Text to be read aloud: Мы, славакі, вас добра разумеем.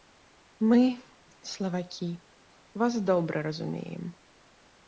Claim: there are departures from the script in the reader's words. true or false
false